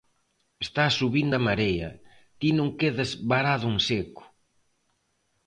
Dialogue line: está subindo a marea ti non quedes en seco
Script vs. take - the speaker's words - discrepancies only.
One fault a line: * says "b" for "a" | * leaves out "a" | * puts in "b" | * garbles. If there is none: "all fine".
* puts in "varado"